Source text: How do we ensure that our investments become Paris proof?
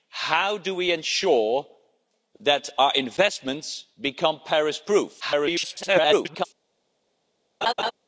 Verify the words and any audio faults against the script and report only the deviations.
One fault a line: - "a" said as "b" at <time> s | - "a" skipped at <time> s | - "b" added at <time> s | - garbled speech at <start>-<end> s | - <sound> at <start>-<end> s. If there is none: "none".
- garbled speech at 5.2-6.5 s
- laugh at 7.6-7.9 s